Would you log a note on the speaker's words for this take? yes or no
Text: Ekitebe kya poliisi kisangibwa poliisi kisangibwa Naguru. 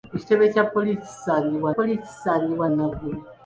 no